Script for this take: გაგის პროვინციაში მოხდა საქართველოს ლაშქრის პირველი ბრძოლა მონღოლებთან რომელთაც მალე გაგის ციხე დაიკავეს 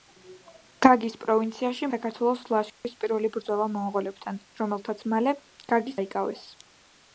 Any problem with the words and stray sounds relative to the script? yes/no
yes